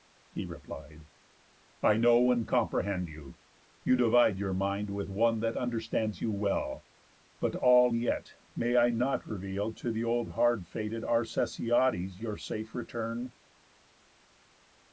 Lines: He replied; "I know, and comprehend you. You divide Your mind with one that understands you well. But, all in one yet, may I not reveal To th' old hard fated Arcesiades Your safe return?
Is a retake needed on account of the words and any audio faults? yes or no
yes